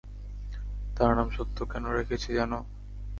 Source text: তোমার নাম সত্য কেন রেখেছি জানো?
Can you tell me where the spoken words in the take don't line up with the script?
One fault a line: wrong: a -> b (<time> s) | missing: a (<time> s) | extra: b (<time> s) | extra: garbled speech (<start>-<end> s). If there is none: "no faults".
wrong: তোমার -> তার (1.0 s)